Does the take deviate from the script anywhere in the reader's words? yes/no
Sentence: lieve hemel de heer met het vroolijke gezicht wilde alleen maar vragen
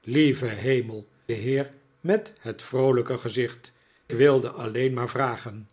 no